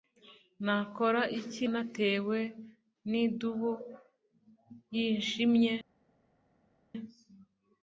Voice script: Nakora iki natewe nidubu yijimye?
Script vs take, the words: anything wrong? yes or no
no